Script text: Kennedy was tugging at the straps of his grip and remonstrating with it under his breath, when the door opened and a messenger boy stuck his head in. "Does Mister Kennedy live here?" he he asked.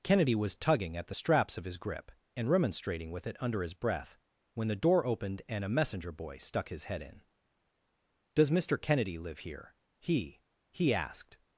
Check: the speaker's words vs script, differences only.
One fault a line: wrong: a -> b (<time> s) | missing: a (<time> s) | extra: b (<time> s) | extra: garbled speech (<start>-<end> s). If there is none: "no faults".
no faults